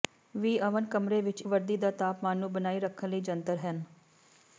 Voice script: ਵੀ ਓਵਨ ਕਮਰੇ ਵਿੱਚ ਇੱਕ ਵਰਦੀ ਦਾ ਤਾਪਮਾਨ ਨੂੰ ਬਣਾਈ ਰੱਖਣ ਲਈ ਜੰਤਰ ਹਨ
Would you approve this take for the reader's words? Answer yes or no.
no